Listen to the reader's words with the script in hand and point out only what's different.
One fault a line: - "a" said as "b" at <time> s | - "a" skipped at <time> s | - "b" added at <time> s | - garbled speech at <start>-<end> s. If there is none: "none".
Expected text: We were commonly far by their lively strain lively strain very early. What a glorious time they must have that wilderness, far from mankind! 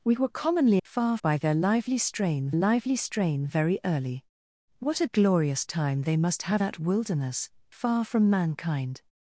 none